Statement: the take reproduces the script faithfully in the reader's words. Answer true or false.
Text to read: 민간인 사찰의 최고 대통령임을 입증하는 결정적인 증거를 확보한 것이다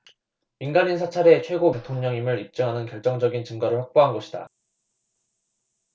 true